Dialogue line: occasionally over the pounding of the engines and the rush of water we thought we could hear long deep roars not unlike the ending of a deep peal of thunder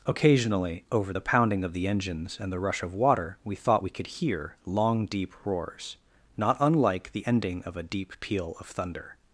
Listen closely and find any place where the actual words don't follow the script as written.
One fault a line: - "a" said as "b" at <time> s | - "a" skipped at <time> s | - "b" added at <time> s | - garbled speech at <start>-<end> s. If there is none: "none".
none